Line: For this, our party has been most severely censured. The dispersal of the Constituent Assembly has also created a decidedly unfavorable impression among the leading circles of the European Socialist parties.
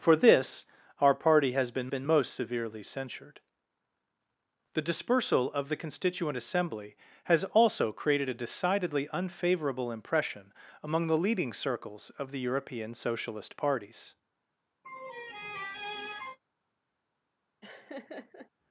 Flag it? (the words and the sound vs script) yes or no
yes